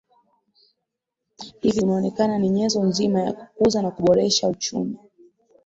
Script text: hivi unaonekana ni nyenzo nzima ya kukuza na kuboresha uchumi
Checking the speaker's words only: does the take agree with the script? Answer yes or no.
yes